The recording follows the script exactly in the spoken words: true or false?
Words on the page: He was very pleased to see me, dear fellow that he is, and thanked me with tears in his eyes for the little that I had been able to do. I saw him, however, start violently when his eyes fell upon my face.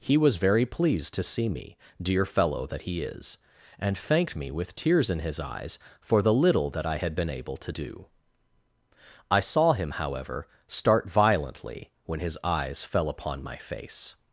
true